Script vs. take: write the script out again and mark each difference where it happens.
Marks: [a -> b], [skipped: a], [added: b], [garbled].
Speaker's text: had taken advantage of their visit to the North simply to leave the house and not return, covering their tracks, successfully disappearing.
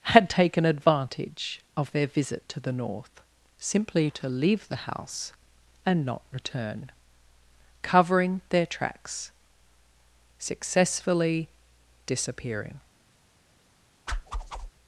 had taken advantage of their visit to the North simply to leave the house and not return, covering their tracks, successfully disappearing.